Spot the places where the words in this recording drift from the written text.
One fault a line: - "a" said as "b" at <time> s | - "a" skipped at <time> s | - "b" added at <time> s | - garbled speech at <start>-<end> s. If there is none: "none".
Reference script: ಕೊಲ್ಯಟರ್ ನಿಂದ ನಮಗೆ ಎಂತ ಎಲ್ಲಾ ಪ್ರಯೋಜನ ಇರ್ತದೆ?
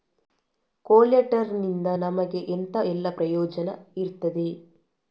none